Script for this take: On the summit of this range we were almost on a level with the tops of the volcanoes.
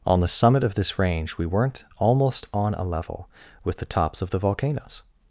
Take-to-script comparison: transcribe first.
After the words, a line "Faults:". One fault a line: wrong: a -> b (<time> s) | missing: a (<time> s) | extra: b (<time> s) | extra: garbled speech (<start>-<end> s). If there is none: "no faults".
On the summit of this range we weren't almost on a level with the tops of the volcanoes.
Faults:
wrong: were -> weren't (1.4 s)